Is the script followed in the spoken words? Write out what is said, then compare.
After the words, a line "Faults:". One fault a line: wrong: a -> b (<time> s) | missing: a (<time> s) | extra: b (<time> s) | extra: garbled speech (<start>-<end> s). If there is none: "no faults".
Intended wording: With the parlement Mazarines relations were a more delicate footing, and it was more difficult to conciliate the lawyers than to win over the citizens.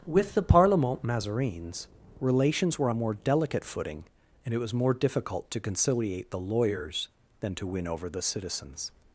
With the parlement Mazarines relations were a more delicate footing, and it was more difficult to conciliate the lawyers than to win over the citizens.
Faults:
no faults